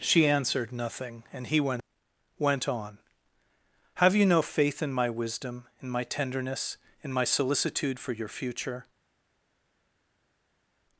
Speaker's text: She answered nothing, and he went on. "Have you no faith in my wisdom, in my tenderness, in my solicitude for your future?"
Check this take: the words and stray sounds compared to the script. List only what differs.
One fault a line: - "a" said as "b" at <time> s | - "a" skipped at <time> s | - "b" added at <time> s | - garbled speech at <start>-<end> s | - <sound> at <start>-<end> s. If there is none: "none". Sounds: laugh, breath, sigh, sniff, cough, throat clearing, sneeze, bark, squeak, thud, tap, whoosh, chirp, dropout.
- "went" added at 2.4 s